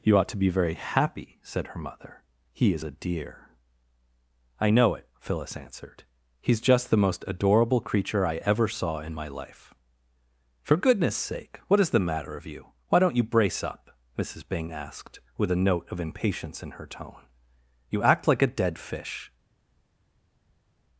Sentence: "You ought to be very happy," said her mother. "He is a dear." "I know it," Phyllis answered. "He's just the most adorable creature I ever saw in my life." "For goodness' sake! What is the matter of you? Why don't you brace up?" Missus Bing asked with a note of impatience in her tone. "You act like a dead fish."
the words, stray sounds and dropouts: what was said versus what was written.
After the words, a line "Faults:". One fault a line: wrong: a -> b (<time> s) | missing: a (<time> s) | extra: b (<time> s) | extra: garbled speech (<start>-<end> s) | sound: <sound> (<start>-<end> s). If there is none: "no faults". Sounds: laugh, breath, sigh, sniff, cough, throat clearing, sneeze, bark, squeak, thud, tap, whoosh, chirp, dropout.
"You ought to be very happy," said her mother. "He is a dear." "I know it," Phyllis answered. "He's just the most adorable creature I ever saw in my life." "For goodness' sake! What is the matter of you? Why don't you brace up?" Missus Bing asked with a note of impatience in her tone. "You act like a dead fish."
Faults:
no faults